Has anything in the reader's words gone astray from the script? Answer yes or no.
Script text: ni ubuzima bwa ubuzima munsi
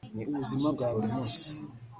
yes